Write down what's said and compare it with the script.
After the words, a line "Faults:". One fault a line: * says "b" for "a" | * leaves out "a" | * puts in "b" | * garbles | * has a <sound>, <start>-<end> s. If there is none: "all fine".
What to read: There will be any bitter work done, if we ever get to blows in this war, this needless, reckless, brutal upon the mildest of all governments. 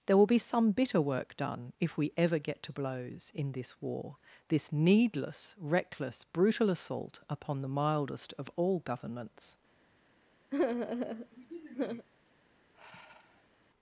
There will be some bitter work done, if we ever get to blows in this war, this needless, reckless, brutal assault upon the mildest of all governments.
Faults:
* says "some" for "any"
* puts in "assault"
* has a sigh, 10.5-12.1 s
* has a sigh, 12.7-13.5 s